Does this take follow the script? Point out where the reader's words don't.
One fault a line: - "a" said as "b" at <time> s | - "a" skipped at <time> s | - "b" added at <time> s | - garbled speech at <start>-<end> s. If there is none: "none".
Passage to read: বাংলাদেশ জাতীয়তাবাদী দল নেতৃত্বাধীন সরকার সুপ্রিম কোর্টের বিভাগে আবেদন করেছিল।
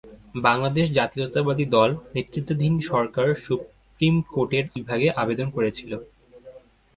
none